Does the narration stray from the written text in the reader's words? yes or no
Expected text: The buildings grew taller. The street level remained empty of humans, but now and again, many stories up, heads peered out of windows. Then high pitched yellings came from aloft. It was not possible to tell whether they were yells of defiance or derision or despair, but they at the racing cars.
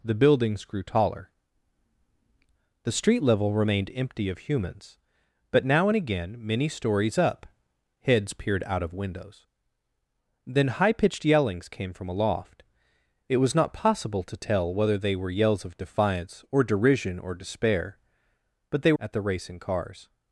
no